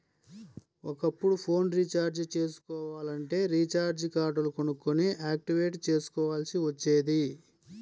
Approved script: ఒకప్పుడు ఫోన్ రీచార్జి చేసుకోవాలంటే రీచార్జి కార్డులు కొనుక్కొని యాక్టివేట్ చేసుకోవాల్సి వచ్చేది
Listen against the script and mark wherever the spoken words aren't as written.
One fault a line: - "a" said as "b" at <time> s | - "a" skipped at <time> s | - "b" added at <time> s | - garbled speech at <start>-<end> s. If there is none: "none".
none